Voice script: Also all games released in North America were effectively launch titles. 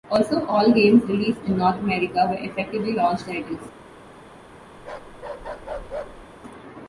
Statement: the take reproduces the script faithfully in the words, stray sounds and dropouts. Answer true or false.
false